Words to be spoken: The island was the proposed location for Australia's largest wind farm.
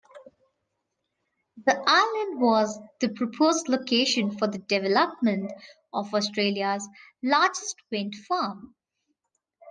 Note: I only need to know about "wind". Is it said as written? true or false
true